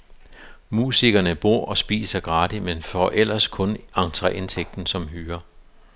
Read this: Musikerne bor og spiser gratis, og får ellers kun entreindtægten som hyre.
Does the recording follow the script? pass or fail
fail